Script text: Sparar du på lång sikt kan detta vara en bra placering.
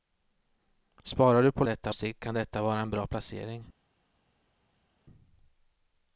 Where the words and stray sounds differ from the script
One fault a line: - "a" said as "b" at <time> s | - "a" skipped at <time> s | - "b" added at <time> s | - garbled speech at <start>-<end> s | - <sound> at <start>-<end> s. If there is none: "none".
- "lång" said as "detta" at 1.7 s